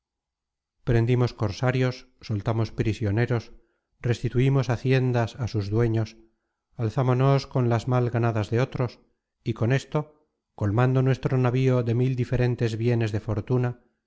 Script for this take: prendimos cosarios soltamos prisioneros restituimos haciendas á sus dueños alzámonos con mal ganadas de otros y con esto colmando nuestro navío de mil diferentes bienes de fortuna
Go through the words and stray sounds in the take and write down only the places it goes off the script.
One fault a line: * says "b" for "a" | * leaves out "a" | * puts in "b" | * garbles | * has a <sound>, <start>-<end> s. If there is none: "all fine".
* puts in "las"